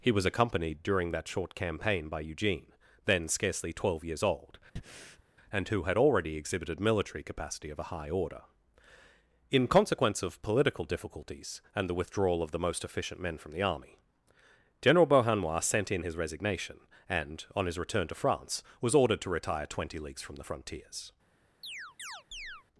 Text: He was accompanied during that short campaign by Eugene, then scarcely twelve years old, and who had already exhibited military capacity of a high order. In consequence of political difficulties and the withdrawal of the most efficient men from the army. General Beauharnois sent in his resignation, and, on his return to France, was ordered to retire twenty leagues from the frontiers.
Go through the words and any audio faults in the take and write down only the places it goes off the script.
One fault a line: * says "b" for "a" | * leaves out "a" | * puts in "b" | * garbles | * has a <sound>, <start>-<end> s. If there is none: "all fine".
* has a breath, 4.8-5.2 s
* has a chirp, 21.6-22.6 s